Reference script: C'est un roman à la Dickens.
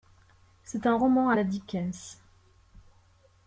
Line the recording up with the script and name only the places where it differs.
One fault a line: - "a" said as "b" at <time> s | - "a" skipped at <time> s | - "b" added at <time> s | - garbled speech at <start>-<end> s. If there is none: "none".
none